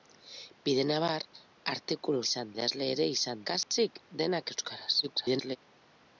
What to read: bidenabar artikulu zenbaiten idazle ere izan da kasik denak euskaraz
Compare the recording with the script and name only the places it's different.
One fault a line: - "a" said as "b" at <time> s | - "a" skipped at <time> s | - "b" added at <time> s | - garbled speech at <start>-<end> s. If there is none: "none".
- "zenbaiten" said as "izan" at 2.3 s
- "da" skipped at 3.5 s
- garbled speech at 5.0-5.6 s